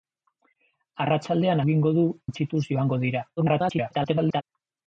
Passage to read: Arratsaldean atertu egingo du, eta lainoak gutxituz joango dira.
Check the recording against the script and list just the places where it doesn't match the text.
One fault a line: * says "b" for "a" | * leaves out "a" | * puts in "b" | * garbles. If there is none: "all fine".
* leaves out "atertu"
* leaves out "eta lainoak"
* garbles